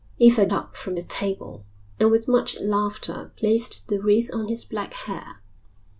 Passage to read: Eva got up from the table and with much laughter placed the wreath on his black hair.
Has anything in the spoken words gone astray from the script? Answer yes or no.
yes